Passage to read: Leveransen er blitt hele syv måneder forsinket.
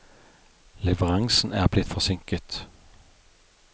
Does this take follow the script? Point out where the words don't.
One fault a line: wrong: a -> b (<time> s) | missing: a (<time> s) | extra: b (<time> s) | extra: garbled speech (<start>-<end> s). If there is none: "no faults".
missing: hele syv måneder (1.9 s)